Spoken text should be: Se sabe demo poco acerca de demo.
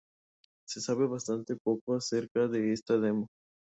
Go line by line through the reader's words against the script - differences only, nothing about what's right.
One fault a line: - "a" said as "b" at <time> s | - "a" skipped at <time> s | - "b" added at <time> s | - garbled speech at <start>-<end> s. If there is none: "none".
- "demo" said as "bastante" at 1.1 s
- "esta" added at 2.7 s